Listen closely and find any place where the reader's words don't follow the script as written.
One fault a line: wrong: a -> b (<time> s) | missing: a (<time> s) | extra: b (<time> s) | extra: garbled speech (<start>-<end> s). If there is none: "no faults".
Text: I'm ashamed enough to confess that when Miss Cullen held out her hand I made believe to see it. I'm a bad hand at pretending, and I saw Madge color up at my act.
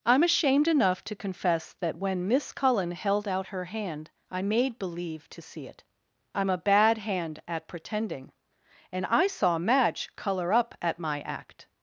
no faults